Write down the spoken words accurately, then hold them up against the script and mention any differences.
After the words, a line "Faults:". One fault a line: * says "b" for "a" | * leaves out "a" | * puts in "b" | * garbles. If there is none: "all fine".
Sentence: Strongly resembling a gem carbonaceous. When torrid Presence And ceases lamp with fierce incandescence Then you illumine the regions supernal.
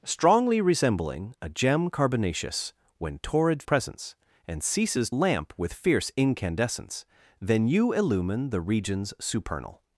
Strongly resembling a gem carbonaceous. When torrid Presence And ceases lamp with fierce incandescence Then you illumine the regions supernal.
Faults:
all fine